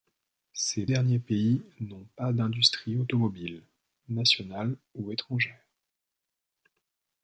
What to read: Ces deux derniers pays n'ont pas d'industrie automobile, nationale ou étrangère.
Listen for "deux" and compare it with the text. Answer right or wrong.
wrong